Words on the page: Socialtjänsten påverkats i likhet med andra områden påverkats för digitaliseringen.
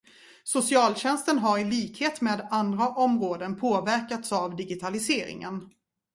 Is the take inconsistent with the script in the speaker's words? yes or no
yes